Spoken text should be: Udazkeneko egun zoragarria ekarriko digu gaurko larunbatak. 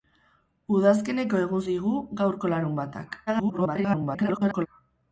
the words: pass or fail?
fail